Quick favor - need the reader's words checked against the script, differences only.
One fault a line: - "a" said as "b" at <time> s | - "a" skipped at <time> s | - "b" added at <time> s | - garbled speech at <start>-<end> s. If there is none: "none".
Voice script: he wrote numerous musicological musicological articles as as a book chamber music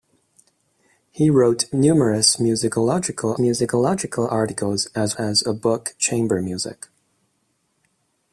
none